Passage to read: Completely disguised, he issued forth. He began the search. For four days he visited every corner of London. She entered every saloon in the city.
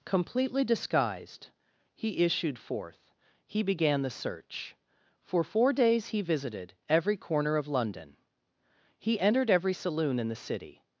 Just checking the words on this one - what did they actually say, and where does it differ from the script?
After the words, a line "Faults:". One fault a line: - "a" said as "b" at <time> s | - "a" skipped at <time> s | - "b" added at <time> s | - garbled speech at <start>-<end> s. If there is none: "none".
Completely disguised, he issued forth. He began the search. For four days he visited every corner of London. He entered every saloon in the city.
Faults:
- "She" said as "He" at 9.0 s